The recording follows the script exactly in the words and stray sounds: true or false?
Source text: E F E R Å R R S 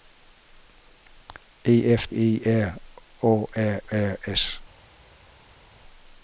true